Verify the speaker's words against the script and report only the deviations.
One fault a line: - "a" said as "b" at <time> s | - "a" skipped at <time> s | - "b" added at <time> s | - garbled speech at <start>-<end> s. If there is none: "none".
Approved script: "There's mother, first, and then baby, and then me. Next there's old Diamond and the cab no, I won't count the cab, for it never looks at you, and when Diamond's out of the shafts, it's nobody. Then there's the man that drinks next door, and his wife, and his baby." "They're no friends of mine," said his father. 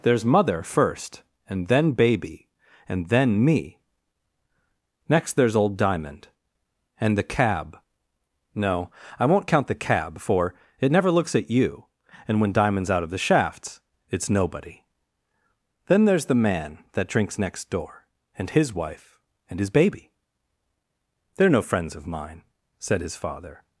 none